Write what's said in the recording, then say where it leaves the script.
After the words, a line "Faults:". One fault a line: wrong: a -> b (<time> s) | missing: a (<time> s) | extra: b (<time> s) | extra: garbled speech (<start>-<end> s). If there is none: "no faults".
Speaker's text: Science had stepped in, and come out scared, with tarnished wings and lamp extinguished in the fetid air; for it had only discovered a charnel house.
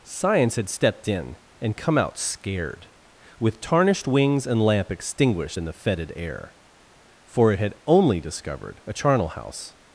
Science had stepped in, and come out scared, with tarnished wings and lamp extinguished in the fetid air; for it had only discovered a charnel house.
Faults:
no faults